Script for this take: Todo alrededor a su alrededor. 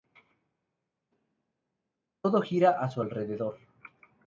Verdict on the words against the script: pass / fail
fail